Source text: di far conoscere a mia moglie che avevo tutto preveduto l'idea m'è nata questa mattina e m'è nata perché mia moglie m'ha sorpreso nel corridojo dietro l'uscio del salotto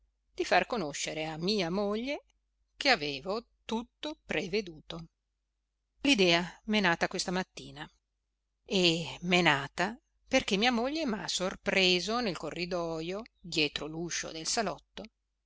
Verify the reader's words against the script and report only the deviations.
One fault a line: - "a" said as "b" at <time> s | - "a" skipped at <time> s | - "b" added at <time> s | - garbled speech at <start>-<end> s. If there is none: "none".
none